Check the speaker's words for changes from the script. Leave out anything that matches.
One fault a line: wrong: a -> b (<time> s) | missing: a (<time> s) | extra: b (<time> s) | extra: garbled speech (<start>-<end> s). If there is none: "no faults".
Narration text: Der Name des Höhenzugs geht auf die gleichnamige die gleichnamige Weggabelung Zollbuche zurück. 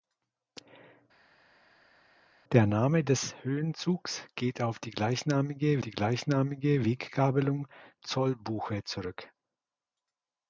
no faults